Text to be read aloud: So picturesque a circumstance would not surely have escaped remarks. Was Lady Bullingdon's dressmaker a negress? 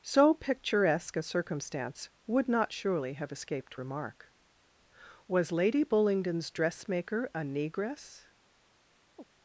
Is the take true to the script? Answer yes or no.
no